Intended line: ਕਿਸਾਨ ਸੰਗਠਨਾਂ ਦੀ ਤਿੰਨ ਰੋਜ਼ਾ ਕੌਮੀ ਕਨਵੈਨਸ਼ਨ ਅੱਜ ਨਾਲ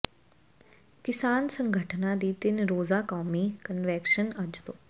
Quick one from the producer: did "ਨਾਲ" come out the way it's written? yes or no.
no